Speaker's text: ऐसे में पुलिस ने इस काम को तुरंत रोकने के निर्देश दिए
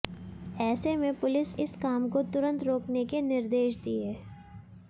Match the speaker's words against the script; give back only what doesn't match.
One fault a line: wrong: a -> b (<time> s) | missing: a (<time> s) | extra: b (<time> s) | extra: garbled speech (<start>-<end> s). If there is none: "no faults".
missing: ने (1.6 s)